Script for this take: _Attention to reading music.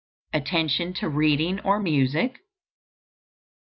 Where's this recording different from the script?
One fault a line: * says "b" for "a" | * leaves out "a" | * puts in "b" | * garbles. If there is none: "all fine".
* puts in "or"